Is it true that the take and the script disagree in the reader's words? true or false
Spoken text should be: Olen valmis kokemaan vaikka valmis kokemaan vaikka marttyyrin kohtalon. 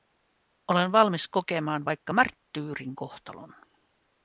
true